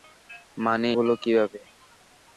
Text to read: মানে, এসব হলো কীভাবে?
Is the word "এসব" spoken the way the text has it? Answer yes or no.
no